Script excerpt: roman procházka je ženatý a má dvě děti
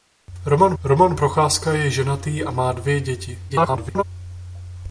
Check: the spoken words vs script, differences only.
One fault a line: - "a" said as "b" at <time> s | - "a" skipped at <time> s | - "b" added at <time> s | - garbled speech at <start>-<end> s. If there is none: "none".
- "roman" added at 0.8 s
- garbled speech at 3.5-4.0 s